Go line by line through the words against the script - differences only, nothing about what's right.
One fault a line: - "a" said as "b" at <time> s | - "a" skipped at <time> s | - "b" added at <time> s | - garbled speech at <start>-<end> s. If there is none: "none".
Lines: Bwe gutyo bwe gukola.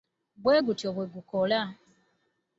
none